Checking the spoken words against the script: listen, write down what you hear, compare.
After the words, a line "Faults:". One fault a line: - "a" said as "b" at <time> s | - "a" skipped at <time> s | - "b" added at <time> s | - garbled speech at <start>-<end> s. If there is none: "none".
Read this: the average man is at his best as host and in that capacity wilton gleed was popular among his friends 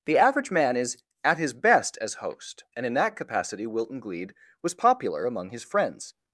the average man is at his best as host and in that capacity wilton gleed was popular among his friends
Faults:
none